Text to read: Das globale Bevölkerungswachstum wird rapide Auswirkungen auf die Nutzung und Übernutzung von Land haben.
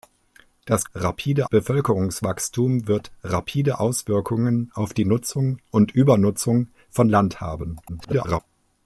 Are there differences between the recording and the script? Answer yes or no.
yes